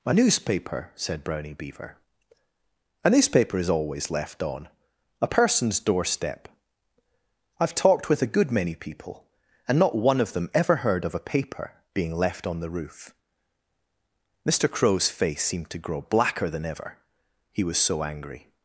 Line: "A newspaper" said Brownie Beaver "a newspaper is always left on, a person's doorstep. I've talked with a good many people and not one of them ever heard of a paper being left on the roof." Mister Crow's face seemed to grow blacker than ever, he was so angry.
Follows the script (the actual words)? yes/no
yes